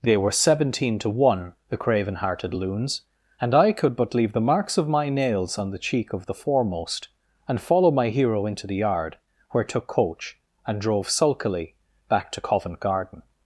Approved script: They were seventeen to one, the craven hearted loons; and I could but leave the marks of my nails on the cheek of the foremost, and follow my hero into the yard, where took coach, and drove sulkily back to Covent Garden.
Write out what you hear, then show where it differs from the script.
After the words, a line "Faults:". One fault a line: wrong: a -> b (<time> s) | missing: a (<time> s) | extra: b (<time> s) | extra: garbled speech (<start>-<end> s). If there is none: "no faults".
They were seventeen to one, the craven hearted loons; and I could but leave the marks of my nails on the cheek of the foremost, and follow my hero into the yard, where took coach, and drove sulkily back to Covent Garden.
Faults:
no faults